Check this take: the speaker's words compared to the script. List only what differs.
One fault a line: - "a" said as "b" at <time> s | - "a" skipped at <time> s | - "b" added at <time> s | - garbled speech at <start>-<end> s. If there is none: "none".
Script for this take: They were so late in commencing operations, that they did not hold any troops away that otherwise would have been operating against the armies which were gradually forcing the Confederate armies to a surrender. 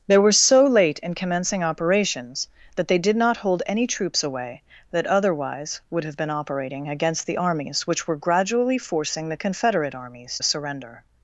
- "to" skipped at 10.4 s